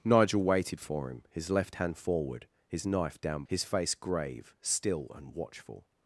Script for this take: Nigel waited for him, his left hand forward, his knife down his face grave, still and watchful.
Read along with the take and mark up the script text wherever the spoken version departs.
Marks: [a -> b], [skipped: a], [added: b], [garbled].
Nigel waited for him, his left hand forward, his knife down his face grave, still and watchful.